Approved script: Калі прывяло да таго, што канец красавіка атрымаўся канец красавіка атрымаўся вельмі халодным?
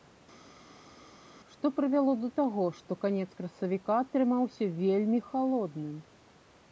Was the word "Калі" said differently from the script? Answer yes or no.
yes